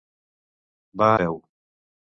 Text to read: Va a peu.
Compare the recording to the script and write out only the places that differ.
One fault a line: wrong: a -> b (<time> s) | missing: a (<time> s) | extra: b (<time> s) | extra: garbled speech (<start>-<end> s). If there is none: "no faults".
no faults